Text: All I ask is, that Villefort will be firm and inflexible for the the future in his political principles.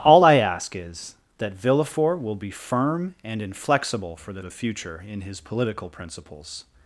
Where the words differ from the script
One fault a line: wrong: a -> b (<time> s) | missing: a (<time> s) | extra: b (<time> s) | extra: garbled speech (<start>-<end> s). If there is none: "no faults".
no faults